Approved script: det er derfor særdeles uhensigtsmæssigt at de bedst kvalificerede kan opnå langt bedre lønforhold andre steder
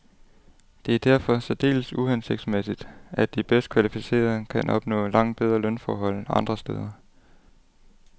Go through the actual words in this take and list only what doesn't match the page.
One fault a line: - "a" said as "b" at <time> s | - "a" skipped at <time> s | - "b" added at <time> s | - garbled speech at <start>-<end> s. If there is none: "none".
none